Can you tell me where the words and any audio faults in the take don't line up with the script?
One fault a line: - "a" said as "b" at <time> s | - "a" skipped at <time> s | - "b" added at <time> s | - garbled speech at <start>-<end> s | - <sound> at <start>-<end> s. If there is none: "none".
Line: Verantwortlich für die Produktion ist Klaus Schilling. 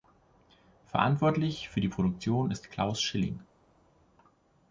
none